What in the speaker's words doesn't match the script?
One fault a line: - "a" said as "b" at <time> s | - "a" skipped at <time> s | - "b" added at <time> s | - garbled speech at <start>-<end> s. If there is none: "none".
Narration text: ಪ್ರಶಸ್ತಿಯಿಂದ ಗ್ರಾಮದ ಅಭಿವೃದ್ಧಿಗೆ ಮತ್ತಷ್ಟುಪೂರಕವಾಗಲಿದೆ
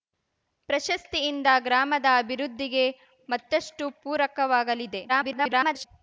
- garbled speech at 5.1-5.9 s